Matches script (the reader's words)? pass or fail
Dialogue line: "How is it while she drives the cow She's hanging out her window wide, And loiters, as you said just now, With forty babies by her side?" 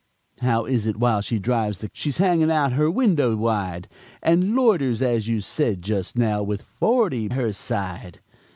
fail